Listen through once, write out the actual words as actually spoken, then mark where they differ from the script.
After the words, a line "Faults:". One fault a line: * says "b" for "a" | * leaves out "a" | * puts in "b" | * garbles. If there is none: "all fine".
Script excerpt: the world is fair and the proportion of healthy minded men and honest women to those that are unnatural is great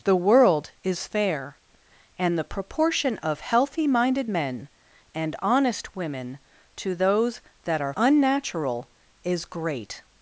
the world is fair and the proportion of healthy minded men and honest women to those that are unnatural is great
Faults:
all fine